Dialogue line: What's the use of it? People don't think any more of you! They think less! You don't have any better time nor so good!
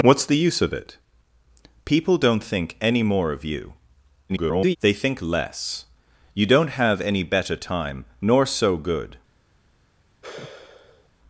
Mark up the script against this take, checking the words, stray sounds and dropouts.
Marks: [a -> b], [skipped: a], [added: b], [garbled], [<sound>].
What's the use of it? People don't think any more of you! [garbled] They think less! You don't have any better time nor so good! [sigh]